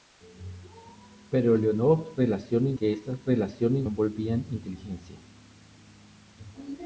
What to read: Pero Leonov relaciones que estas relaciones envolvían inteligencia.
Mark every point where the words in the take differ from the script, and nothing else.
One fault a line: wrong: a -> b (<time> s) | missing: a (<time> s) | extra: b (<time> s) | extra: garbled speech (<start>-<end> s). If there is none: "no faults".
no faults